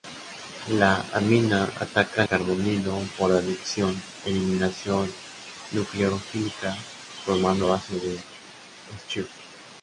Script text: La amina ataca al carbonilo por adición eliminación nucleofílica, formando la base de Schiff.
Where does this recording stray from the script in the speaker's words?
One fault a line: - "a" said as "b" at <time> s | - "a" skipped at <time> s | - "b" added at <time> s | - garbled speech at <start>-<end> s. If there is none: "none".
- "al" skipped at 2.2 s
- "la" skipped at 7.7 s